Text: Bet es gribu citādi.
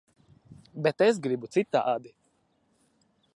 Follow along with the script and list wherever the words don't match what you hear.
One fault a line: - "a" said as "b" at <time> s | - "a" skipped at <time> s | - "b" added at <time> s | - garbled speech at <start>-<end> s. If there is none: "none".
none